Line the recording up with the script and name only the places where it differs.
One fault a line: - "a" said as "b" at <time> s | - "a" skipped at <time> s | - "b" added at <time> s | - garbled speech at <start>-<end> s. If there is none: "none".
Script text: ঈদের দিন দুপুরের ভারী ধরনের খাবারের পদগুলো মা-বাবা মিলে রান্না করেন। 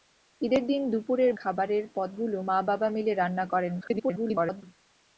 - "ভারী ধরনের" skipped at 1.3 s
- garbled speech at 3.8-4.6 s